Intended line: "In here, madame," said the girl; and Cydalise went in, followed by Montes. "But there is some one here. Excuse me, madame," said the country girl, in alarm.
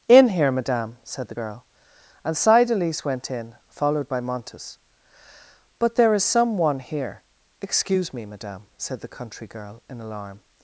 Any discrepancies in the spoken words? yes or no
no